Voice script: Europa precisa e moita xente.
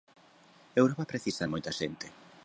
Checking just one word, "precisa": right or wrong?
right